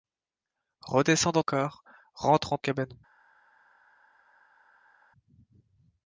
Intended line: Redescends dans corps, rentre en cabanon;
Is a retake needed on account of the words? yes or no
no